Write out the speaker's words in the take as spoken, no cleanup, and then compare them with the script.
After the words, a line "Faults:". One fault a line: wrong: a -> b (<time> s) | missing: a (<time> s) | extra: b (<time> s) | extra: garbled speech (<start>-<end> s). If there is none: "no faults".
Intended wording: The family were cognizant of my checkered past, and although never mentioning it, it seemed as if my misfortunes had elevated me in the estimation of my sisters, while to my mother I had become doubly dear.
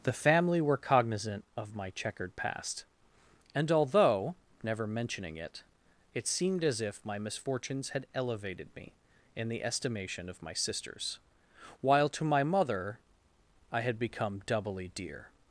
The family were cognizant of my checkered past, and although never mentioning it, it seemed as if my misfortunes had elevated me in the estimation of my sisters, while to my mother I had become doubly dear.
Faults:
no faults